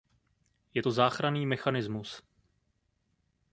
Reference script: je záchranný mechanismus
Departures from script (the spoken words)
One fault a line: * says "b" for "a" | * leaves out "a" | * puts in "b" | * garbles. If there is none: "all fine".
* puts in "to"